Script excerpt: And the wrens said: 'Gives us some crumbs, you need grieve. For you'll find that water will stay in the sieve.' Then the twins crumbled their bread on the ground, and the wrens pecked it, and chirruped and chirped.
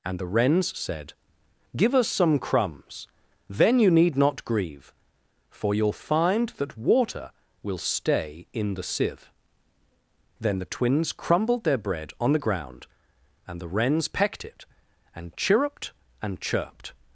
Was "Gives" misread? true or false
true